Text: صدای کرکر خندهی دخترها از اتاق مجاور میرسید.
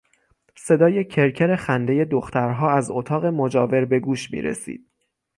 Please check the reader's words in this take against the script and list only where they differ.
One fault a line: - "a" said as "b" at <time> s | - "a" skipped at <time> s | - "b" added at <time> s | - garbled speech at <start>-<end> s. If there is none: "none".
- "به گوش" added at 3.9 s